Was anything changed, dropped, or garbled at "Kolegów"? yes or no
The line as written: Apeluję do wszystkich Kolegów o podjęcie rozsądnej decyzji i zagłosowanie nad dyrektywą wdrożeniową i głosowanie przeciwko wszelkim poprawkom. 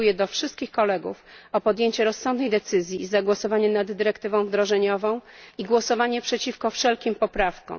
no